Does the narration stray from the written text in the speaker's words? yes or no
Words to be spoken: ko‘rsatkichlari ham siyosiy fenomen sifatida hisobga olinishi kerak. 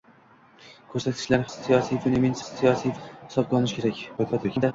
yes